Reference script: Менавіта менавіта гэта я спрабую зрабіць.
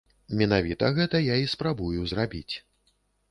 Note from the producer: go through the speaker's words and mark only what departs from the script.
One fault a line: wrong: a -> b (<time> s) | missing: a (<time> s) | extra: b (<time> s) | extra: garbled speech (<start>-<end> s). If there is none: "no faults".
missing: менавіта (0.9 s)
extra: і (1.4 s)